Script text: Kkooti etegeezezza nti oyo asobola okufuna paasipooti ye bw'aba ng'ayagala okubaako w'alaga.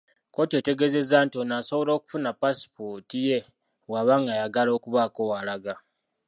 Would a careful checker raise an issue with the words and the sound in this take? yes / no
yes